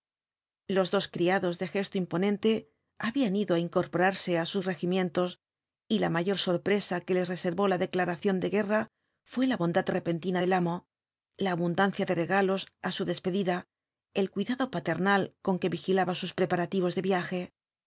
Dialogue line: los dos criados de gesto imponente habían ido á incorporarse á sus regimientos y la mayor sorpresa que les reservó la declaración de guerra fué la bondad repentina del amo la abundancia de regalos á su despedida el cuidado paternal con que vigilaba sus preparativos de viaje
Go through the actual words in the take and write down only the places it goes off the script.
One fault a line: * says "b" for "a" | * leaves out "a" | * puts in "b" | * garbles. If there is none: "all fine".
all fine